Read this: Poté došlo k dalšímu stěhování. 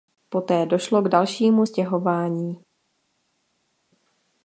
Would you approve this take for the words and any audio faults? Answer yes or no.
yes